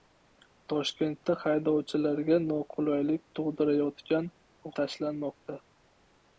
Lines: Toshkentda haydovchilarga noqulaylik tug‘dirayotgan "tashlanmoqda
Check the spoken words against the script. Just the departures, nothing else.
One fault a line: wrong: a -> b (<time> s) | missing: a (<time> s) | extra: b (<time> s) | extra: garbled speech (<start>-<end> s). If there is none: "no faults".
no faults